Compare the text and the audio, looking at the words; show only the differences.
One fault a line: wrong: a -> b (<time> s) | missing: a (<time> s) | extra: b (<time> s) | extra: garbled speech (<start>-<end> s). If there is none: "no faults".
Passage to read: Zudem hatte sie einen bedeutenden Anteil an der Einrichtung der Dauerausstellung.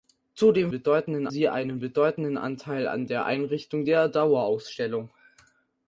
wrong: hatte -> bedeutenden (0.7 s)